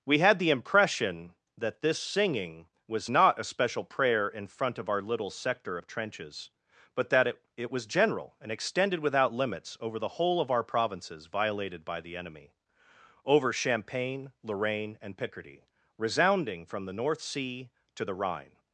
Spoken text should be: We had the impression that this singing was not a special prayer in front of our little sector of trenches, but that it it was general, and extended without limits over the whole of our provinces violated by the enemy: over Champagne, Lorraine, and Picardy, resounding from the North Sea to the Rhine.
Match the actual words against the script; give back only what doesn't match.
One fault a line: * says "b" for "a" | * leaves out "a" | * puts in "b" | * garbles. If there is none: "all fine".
all fine